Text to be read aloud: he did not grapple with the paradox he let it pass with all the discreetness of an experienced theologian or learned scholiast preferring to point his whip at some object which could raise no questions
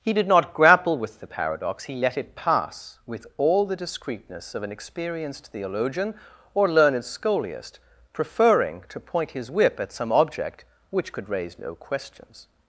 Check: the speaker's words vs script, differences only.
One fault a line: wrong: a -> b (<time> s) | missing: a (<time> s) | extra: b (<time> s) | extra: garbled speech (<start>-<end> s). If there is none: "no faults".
no faults